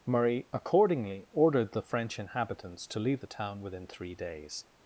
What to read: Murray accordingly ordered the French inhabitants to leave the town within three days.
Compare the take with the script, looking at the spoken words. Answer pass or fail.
pass